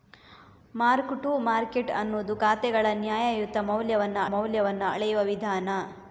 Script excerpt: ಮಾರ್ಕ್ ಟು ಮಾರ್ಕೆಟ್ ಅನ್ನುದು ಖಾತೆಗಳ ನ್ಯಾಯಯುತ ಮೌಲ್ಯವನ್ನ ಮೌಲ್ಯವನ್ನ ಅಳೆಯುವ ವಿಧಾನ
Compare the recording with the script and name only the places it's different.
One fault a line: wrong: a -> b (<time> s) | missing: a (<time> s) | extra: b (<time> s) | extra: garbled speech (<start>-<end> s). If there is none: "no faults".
no faults